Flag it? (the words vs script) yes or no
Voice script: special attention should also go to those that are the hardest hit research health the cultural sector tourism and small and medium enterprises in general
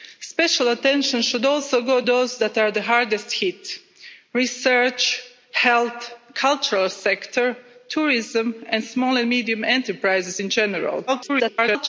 yes